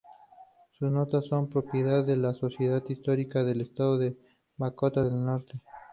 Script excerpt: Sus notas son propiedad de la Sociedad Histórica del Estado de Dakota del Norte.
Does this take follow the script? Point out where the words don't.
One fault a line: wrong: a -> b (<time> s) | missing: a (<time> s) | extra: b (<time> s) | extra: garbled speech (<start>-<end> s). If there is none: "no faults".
no faults